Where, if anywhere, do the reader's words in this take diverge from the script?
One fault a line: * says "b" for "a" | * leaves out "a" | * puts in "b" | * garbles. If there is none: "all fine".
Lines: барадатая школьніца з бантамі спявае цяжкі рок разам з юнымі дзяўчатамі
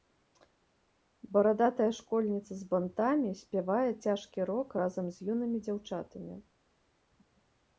all fine